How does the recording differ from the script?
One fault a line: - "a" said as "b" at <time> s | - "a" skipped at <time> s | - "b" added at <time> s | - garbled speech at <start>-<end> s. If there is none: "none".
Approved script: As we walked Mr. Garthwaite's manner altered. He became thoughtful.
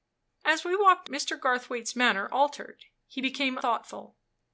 none